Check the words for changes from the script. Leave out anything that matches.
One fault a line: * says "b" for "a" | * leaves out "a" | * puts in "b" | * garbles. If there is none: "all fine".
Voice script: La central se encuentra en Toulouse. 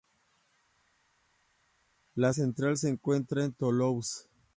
all fine